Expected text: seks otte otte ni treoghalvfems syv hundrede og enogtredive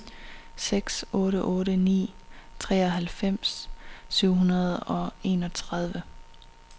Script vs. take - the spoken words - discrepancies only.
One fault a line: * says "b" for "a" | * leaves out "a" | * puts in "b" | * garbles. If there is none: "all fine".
all fine